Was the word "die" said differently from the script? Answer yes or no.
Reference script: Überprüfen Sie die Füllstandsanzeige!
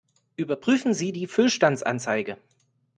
no